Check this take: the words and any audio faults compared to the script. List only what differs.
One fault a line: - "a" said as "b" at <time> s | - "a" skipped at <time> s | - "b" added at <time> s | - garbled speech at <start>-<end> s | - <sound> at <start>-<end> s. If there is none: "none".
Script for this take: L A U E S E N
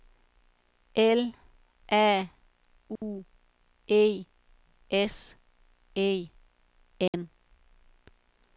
- dropout at 3.0-3.0 s
- dropout at 7.1-7.1 s